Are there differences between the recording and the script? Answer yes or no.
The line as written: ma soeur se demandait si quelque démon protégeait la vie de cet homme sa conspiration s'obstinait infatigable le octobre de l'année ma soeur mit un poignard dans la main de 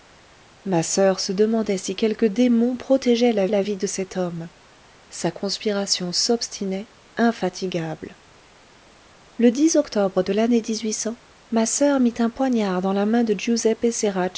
yes